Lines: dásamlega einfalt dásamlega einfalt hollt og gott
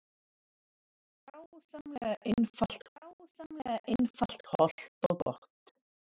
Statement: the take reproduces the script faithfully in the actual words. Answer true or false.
true